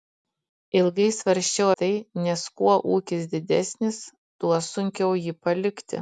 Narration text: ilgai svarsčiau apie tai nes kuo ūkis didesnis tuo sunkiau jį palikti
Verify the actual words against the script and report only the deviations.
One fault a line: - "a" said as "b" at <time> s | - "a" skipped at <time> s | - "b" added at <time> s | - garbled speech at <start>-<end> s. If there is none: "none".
- "apie" skipped at 1.7 s